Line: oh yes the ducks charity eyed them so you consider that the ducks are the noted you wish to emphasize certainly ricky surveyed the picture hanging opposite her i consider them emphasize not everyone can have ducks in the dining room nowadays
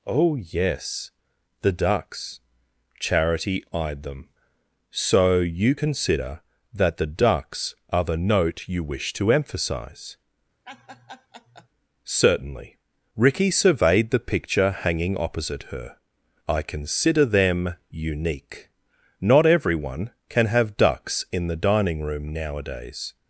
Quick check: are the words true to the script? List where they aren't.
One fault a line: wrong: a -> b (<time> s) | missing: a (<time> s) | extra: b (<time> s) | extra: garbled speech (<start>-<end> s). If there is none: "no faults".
wrong: noted -> note (8.2 s)
wrong: emphasize -> unique (17.9 s)